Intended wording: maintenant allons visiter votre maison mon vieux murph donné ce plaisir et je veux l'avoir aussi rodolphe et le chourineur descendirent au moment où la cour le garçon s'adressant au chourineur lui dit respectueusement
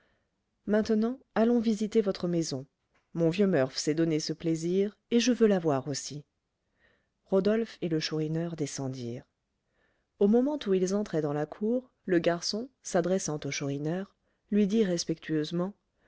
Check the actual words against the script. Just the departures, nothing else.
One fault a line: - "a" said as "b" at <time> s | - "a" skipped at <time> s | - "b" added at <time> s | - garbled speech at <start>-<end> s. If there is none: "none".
- "s'est" added at 3.8 s
- "ils entraient dans" added at 10.7 s